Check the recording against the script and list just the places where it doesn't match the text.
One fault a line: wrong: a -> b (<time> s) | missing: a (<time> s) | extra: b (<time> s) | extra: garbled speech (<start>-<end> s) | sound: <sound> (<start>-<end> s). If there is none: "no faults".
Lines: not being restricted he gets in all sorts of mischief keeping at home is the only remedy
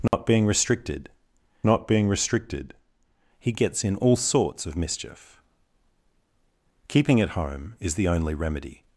sound: dropout (0.1-0.1 s)
extra: not being restricted (1.6 s)